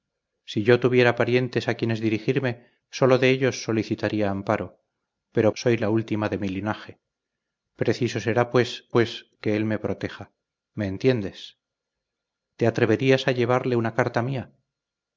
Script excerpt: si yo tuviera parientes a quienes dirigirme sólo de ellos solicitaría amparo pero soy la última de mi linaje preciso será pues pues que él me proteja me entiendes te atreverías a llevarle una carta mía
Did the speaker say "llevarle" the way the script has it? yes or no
yes